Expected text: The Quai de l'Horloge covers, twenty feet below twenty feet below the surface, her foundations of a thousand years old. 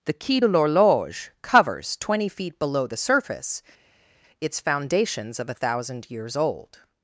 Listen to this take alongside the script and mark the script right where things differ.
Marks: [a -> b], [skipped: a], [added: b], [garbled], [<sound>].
The Quai de l'Horloge covers, twenty feet below [skipped: twenty feet below] the surface, [her -> its] foundations of a thousand years old.